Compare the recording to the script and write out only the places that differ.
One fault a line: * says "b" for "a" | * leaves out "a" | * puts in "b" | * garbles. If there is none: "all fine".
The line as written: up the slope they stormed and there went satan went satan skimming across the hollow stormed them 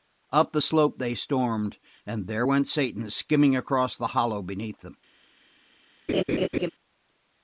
* leaves out "went satan"
* says "beneath" for "stormed"